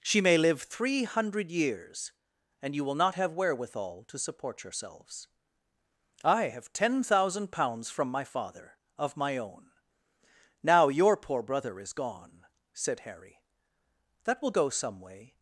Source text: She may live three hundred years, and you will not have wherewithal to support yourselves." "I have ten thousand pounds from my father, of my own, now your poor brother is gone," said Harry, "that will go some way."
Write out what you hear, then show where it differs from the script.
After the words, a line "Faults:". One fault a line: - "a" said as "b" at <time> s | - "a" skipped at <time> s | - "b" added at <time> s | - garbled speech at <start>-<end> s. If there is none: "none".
She may live three hundred years, and you will not have wherewithal to support yourselves." "I have ten thousand pounds from my father, of my own, now your poor brother is gone," said Harry, "that will go some way."
Faults:
none